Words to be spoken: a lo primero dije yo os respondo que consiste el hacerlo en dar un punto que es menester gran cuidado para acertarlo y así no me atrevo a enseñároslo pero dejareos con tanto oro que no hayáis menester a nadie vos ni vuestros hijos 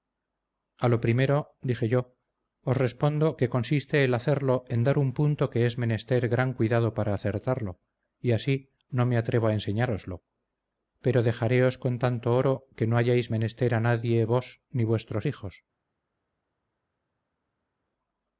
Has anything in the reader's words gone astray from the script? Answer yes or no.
no